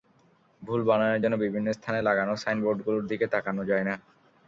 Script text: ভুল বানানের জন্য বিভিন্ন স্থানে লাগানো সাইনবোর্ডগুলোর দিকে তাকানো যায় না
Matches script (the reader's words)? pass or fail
pass